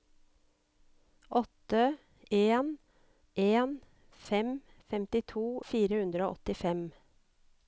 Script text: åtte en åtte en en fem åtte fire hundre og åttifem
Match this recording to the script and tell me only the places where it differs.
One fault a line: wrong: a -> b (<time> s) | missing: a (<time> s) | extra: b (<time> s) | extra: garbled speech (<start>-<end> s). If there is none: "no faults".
missing: åtte (2.8 s)
missing: en (3.8 s)
wrong: åtte -> femtito (4.9 s)